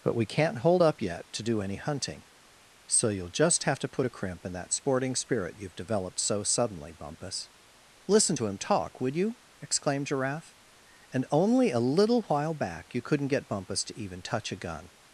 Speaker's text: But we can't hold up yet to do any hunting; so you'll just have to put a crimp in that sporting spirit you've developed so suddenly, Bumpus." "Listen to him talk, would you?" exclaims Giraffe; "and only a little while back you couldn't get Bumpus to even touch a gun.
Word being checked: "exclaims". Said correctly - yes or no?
no